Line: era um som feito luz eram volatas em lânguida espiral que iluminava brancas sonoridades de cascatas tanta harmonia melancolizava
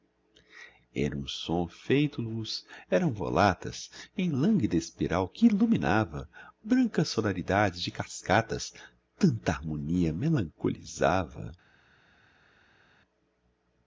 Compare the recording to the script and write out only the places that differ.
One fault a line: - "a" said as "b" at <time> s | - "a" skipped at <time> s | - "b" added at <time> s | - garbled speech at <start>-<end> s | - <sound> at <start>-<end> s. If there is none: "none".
none